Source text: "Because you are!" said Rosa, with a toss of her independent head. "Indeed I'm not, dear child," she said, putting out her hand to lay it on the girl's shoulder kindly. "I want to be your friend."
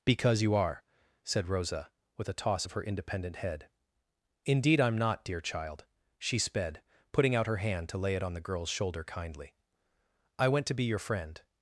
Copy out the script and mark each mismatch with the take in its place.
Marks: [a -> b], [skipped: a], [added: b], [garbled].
"Because you are!" said Rosa, with a toss of her independent head. "Indeed I'm not, dear child," she [said, -> sped] putting out her hand to lay it on the girl's shoulder kindly. "I [want -> went] to be your friend."